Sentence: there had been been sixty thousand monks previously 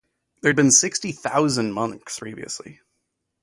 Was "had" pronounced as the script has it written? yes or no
yes